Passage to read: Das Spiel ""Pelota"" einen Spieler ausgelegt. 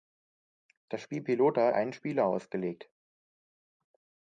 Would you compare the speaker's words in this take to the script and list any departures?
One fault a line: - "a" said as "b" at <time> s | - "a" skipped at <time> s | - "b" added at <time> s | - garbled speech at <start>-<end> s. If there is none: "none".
none